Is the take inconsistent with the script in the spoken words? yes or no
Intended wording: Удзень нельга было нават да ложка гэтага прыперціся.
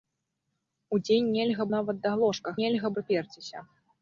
yes